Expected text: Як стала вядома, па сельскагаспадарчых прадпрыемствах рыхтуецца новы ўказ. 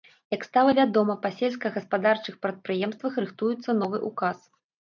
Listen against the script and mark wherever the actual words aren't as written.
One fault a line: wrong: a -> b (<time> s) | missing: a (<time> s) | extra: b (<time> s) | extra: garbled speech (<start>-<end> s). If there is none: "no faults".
no faults